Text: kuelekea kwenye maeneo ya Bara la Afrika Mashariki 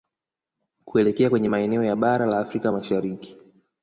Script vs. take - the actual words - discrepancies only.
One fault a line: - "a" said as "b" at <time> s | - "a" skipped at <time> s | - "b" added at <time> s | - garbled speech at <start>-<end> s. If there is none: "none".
none